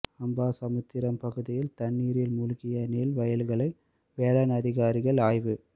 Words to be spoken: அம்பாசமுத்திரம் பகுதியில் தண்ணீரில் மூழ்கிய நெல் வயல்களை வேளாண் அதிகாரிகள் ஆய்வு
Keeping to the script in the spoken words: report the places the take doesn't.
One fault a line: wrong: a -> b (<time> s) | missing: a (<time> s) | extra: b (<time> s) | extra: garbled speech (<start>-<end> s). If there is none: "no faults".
no faults